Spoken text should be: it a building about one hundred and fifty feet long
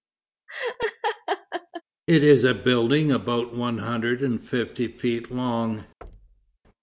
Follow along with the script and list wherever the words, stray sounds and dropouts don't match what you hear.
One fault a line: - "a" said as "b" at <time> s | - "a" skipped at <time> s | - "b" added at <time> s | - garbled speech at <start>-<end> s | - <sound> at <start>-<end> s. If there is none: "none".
- laugh at 0.5-1.8 s
- "is" added at 2.2 s
- thud at 6.0-6.6 s